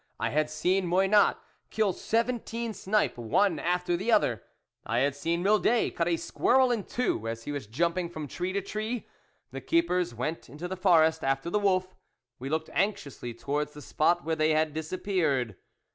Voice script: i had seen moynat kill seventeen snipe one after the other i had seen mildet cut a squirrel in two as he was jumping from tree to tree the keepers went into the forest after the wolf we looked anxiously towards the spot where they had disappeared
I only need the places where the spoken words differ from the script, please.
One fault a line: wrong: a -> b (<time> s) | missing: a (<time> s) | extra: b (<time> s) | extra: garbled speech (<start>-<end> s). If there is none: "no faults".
no faults